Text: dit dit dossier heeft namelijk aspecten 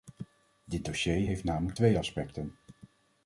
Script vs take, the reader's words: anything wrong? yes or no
yes